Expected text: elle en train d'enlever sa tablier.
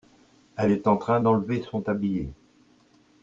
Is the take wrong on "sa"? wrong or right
wrong